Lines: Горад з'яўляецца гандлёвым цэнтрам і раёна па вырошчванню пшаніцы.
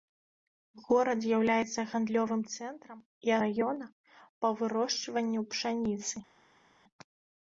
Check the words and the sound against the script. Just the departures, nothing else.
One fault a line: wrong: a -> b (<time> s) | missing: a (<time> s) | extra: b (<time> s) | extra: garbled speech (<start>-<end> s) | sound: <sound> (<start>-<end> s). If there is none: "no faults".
no faults